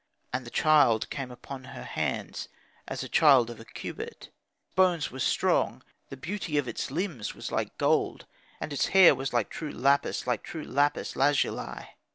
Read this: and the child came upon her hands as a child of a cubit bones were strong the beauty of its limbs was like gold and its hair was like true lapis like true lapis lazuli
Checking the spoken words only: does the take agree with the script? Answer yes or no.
yes